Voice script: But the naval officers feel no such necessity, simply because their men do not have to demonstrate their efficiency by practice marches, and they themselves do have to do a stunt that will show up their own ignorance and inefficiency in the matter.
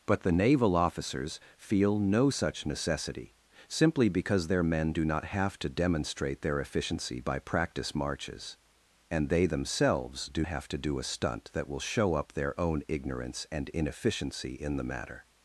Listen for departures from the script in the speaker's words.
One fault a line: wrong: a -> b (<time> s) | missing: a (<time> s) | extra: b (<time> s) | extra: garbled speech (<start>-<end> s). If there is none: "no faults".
no faults